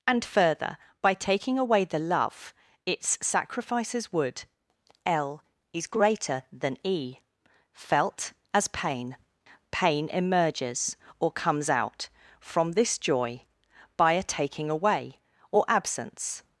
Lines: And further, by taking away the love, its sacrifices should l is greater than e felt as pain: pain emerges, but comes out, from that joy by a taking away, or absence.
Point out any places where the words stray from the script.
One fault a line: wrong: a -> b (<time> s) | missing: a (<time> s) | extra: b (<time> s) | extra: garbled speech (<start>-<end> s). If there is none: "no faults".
wrong: should -> would (4.1 s)
wrong: but -> or (11.2 s)
wrong: that -> this (12.7 s)